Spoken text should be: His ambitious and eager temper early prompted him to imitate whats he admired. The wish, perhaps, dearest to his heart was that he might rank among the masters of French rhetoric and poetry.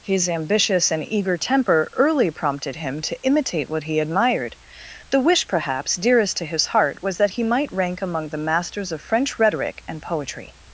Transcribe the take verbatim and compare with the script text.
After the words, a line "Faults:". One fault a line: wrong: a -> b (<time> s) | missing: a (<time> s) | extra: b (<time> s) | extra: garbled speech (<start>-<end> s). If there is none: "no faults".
His ambitious and eager temper early prompted him to imitate what he admired. The wish, perhaps, dearest to his heart was that he might rank among the masters of French rhetoric and poetry.
Faults:
wrong: whats -> what (3.7 s)